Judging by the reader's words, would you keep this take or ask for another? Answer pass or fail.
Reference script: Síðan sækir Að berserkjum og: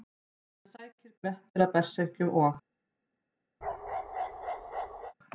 fail